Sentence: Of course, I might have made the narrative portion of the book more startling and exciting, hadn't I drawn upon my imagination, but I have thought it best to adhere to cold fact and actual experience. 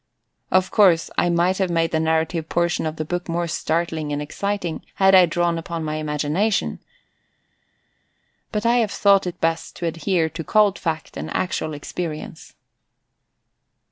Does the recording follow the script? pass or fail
fail